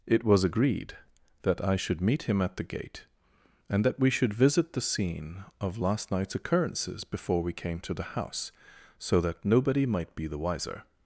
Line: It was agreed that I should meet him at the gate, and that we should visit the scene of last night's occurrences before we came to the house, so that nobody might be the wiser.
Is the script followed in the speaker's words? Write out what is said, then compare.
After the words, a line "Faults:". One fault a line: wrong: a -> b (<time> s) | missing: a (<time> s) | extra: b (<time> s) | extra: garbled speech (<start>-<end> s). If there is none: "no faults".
It was agreed that I should meet him at the gate, and that we should visit the scene of last night's occurrences before we came to the house, so that nobody might be the wiser.
Faults:
no faults